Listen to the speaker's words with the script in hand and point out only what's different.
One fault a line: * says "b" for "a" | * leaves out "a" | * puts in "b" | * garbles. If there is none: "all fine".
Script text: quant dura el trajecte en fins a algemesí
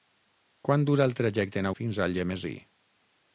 all fine